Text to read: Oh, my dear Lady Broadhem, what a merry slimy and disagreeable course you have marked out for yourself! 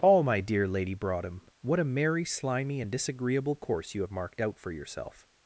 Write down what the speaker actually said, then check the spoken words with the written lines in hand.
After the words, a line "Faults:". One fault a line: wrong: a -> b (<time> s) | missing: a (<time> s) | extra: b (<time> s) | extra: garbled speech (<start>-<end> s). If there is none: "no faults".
Oh, my dear Lady Broadhem, what a merry slimy and disagreeable course you have marked out for yourself!
Faults:
no faults